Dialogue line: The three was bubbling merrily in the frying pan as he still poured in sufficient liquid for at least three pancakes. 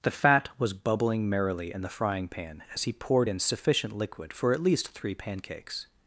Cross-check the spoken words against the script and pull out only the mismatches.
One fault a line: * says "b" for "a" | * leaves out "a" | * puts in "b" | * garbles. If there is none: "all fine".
* says "fat" for "three"
* leaves out "still"